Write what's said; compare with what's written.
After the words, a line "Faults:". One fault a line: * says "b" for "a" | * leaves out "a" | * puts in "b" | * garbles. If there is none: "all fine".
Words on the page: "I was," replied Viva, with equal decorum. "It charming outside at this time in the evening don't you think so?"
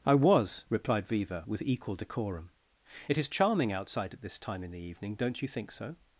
"I was," replied Viva, with equal decorum. "It is charming outside at this time in the evening don't you think so?"
Faults:
* puts in "is"